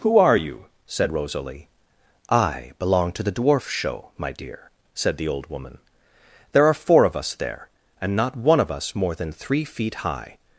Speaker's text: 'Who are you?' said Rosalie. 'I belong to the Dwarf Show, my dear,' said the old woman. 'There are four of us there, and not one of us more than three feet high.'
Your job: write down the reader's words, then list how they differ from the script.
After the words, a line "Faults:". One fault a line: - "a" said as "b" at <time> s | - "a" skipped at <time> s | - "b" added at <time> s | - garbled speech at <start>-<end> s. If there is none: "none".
'Who are you?' said Rosalie. 'I belong to the Dwarf Show, my dear,' said the old woman. 'There are four of us there, and not one of us more than three feet high.'
Faults:
none